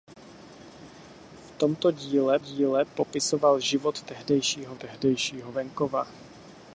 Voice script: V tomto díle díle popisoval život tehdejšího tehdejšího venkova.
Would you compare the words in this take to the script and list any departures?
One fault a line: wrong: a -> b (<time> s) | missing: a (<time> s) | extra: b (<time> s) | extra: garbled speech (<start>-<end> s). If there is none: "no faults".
no faults